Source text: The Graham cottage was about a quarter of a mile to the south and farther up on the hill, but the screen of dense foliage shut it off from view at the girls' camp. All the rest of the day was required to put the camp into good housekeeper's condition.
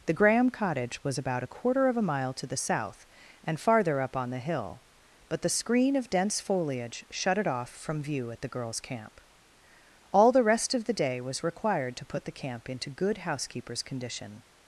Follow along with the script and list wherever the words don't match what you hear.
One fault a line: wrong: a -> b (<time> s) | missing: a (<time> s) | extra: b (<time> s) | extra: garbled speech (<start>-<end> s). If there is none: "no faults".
no faults